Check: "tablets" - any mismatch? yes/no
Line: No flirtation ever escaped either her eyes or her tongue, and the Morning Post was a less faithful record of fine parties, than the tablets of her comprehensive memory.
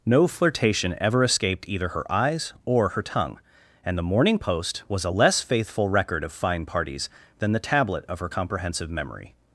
yes